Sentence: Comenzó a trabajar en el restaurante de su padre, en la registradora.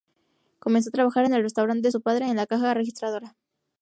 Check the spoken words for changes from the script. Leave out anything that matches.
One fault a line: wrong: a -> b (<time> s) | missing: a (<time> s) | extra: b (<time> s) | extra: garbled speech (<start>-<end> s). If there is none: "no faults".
extra: caja (2.5 s)